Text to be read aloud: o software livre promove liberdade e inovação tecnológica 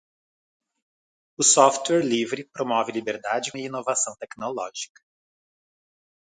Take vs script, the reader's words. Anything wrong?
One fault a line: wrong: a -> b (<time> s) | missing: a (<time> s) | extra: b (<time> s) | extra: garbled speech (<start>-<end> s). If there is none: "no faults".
no faults